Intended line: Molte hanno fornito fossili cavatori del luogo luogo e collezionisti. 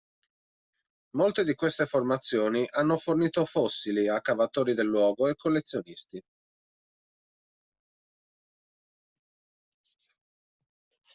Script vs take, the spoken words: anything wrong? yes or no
yes